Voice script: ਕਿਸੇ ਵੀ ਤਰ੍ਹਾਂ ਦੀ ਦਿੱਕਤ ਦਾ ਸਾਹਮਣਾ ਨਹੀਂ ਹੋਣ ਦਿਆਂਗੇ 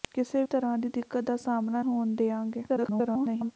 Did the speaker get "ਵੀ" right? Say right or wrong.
wrong